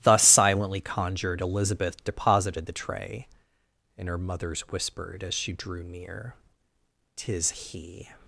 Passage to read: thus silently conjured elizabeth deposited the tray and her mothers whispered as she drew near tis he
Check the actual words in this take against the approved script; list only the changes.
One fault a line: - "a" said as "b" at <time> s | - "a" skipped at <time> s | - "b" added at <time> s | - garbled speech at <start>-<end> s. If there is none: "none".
none